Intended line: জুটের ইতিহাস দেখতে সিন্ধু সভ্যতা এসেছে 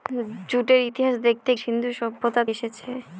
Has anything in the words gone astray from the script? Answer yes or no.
no